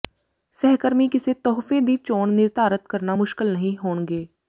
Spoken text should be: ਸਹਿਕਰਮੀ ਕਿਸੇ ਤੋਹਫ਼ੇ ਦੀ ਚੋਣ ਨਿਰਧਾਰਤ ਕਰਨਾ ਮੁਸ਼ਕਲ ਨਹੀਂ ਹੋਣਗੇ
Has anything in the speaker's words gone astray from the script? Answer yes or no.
no